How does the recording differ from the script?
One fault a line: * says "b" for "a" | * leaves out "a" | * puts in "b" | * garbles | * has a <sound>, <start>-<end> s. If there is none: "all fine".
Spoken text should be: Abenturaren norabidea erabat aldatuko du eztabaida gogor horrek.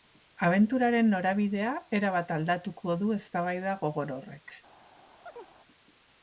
* has a chirp, 5.3-5.5 s